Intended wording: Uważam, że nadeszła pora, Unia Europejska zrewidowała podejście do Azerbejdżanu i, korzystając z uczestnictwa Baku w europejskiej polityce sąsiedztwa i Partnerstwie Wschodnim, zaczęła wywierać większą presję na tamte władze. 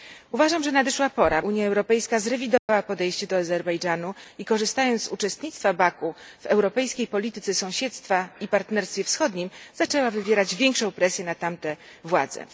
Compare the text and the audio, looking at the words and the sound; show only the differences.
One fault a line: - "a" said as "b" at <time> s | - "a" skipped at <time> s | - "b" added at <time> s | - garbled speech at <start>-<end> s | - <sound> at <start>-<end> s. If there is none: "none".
- dropout at 2.6-2.7 s